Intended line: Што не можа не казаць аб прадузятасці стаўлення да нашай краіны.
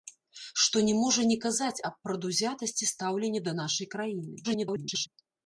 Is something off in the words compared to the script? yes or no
yes